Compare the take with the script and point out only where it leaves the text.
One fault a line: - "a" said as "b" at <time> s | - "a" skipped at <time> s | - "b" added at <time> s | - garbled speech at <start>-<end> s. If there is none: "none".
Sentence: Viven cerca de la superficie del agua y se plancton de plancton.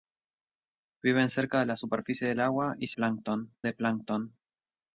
none